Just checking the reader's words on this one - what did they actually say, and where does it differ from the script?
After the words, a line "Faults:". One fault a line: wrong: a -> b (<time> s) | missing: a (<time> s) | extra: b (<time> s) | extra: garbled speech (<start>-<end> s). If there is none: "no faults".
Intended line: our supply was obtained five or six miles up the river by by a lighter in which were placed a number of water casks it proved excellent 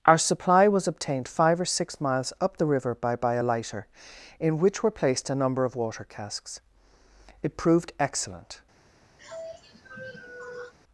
our supply was obtained five or six miles up the river by by a lighter in which were placed a number of water casks it proved excellent
Faults:
no faults